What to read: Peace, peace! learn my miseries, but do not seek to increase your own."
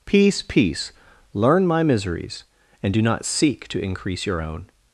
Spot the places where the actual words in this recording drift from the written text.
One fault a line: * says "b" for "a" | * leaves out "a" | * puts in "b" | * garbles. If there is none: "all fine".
* says "and" for "but"